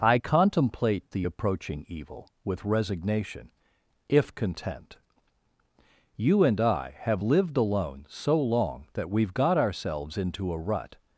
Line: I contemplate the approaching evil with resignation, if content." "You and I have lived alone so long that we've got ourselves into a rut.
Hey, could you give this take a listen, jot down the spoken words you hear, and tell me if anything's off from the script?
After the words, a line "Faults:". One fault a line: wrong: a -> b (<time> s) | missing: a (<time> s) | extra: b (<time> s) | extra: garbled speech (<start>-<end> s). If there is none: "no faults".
I contemplate the approaching evil with resignation, if content." "You and I have lived alone so long that we've got ourselves into a rut.
Faults:
no faults